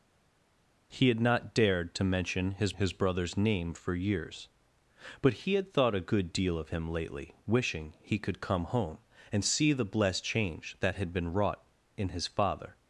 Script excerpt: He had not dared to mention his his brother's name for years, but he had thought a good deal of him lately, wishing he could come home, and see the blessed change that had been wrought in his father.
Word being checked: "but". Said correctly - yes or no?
yes